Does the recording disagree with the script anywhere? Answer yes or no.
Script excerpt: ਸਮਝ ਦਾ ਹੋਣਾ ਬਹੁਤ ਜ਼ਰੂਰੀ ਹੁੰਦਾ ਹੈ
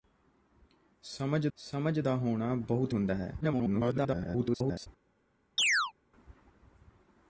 yes